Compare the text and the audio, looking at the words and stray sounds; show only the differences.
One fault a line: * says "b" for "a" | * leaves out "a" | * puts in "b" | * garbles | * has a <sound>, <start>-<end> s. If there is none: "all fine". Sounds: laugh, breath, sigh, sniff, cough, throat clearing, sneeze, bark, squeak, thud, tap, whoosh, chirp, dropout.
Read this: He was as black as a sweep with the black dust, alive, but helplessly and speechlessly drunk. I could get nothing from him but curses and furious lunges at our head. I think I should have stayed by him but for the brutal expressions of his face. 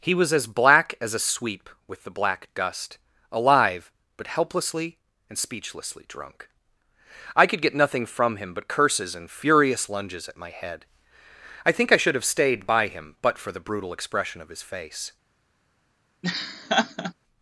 * says "my" for "our"
* says "expression" for "expressions"
* has a laugh, 16.2-17.1 s